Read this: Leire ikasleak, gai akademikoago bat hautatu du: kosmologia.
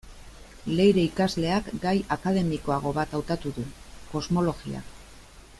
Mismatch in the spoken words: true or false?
false